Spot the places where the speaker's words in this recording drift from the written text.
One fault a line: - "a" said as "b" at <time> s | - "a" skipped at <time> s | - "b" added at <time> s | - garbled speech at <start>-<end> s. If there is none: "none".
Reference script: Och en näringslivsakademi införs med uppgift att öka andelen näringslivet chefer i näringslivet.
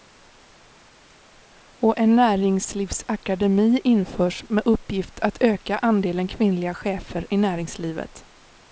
- "näringslivet" said as "kvinnliga" at 6.3 s